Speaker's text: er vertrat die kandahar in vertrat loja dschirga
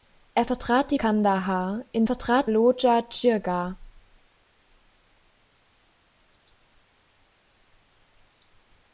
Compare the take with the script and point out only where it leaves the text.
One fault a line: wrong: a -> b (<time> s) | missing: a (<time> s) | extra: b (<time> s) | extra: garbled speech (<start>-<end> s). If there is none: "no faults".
no faults